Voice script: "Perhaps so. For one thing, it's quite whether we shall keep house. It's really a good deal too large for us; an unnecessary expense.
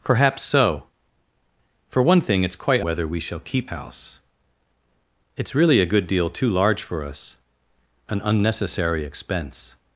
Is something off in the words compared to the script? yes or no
no